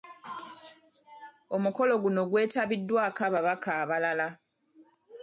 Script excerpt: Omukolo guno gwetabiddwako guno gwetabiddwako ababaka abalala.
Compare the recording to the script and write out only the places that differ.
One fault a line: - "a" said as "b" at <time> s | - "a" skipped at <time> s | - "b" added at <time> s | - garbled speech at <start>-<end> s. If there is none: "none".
- "guno gwetabiddwako" skipped at 3.2 s